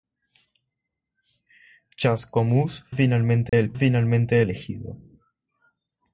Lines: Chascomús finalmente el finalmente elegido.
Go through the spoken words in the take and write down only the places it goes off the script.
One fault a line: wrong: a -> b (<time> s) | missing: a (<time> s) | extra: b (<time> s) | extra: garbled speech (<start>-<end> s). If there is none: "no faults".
no faults